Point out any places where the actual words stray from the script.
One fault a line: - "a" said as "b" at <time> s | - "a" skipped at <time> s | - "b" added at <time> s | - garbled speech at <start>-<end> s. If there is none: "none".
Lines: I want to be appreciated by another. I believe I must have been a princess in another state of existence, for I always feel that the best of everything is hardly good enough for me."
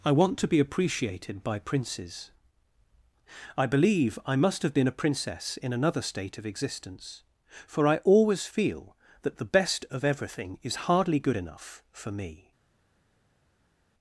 - "another" said as "princes" at 1.6 s